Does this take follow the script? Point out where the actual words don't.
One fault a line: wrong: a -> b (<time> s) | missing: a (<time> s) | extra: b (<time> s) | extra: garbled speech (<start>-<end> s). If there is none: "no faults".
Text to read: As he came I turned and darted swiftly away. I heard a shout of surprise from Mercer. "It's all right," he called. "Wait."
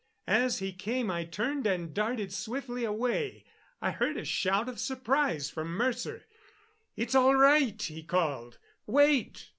no faults